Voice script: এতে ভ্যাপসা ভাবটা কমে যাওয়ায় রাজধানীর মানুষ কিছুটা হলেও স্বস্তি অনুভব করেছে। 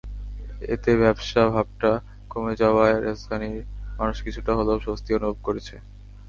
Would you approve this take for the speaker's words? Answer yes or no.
yes